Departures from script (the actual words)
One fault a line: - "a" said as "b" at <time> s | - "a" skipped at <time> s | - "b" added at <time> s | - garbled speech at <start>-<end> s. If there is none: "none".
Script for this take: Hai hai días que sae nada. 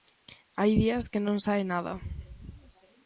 - "hai" skipped at 0.7 s
- "non" added at 1.2 s